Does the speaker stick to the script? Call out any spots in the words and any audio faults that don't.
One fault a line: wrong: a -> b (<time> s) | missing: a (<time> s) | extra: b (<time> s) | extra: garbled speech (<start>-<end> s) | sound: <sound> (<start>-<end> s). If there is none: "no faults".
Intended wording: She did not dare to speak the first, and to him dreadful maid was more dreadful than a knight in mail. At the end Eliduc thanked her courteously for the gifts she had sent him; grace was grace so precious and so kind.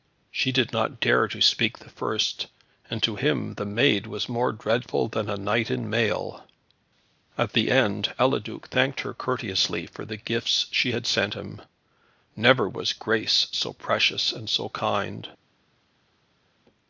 wrong: dreadful -> the (3.6 s)
wrong: grace -> never (12.3 s)